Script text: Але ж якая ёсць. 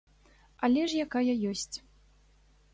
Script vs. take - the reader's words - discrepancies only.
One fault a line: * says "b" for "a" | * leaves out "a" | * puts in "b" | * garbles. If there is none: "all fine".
all fine